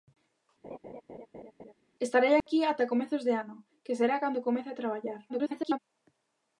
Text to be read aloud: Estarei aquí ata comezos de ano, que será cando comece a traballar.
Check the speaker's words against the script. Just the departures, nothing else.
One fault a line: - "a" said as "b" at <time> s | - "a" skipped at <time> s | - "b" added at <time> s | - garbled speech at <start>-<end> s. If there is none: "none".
- garbled speech at 5.3-5.8 s